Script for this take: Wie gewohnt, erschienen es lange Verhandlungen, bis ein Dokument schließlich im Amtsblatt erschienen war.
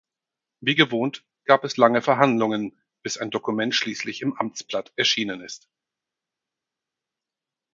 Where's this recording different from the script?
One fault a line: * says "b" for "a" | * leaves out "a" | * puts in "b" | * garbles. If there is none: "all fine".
* says "gab" for "erschienen"
* says "ist" for "war"